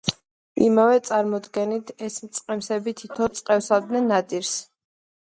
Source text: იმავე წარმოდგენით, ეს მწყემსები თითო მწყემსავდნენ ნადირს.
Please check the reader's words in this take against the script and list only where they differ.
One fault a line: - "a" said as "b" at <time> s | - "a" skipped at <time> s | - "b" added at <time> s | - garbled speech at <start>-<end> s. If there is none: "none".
none